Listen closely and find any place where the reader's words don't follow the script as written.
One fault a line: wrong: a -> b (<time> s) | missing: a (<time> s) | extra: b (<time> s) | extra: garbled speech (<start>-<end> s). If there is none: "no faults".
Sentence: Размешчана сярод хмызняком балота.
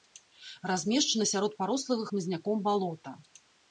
extra: парослага (1.6 s)